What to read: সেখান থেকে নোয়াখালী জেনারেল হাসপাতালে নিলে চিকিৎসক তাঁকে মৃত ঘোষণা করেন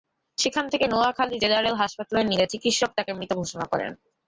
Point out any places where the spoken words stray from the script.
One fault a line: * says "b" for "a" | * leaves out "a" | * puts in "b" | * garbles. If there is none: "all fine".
all fine